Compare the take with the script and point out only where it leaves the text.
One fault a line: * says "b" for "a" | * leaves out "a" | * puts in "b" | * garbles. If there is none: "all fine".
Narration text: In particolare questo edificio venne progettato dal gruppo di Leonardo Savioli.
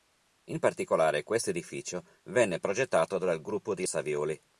* leaves out "Leonardo"